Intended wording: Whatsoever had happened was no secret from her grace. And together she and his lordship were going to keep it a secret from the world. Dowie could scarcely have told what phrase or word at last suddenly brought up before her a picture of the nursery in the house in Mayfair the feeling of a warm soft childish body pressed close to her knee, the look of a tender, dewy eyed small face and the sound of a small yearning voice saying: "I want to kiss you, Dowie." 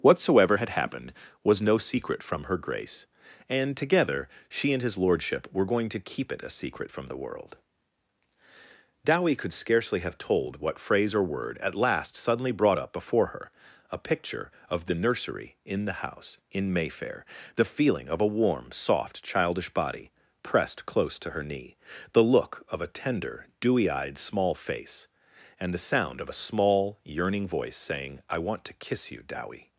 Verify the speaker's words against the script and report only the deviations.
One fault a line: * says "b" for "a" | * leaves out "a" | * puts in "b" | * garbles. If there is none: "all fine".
all fine